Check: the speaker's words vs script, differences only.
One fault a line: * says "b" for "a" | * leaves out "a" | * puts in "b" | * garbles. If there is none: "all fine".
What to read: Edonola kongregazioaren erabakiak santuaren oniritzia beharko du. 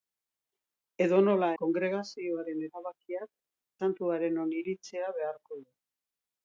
all fine